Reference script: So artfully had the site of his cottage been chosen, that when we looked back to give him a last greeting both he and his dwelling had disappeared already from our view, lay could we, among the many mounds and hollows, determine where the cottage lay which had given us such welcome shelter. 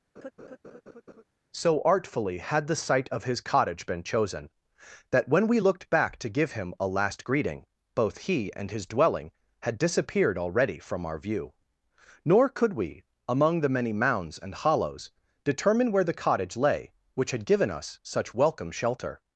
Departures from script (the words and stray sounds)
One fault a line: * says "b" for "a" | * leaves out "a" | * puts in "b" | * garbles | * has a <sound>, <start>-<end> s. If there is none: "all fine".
* has a laugh, 0.2-1.2 s
* says "nor" for "lay"